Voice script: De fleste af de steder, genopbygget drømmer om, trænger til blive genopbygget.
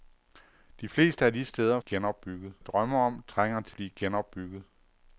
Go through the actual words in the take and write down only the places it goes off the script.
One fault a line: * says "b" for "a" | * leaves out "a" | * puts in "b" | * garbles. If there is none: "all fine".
all fine